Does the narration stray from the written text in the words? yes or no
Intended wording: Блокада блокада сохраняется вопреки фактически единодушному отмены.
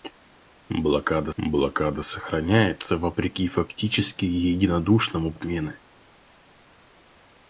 no